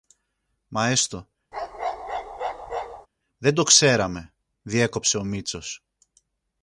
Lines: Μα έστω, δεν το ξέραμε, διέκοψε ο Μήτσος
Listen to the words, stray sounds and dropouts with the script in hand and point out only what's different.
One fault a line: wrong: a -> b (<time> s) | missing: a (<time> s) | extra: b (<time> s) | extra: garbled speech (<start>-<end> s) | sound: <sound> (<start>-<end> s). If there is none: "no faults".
sound: bark (1.5-3.1 s)